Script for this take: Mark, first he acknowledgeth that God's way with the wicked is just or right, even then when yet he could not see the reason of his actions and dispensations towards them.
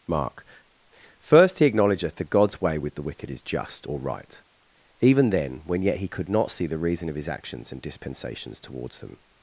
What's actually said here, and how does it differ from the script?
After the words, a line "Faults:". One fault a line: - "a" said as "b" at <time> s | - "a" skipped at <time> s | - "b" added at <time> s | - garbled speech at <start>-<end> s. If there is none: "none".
Mark, first he acknowledgeth that God's way with the wicked is just or right, even then when yet he could not see the reason of his actions and dispensations towards them.
Faults:
none